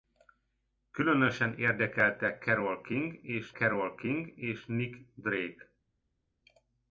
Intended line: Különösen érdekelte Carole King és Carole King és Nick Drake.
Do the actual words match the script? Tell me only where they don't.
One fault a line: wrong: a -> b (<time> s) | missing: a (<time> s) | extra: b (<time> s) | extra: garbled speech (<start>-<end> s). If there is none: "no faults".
no faults